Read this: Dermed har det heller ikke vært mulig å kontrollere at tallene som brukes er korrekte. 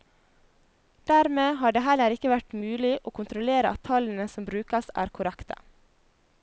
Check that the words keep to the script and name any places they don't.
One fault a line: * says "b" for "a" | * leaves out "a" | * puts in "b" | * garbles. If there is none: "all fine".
all fine